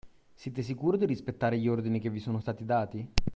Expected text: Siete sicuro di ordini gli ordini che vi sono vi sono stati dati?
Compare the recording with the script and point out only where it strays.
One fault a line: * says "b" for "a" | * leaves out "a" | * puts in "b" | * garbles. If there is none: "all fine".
* says "rispettare" for "ordini"
* leaves out "vi sono"